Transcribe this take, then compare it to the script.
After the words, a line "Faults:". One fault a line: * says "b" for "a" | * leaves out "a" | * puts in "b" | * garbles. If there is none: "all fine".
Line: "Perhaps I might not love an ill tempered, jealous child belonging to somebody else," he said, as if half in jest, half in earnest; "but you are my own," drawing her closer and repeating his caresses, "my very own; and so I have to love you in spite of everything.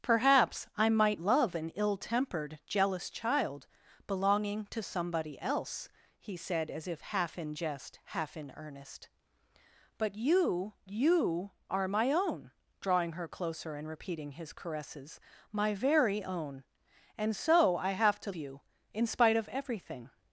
"Perhaps I might love an ill tempered, jealous child belonging to somebody else," he said, as if half in jest, half in earnest; "but you you are my own," drawing her closer and repeating his caresses, "my very own; and so I have to you in spite of everything.
Faults:
* leaves out "not"
* puts in "you"
* leaves out "love"